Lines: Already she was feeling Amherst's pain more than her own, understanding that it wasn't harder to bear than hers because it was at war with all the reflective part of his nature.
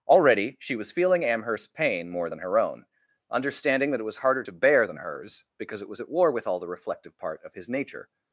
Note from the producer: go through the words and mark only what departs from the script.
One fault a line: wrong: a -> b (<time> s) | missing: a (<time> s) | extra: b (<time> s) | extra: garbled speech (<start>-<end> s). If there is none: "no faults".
wrong: wasn't -> was (4.0 s)